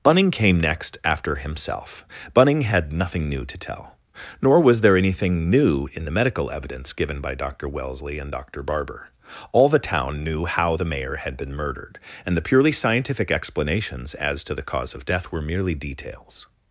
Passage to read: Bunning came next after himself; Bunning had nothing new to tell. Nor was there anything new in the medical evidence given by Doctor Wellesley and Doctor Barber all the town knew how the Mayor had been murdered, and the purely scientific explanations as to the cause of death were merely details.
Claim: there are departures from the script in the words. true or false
false